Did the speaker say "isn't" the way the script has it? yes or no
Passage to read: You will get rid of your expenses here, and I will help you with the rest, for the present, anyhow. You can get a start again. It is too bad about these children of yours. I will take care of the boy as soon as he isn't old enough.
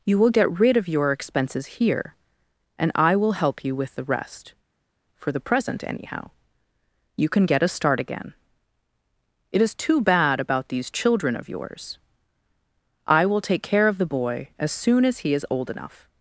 no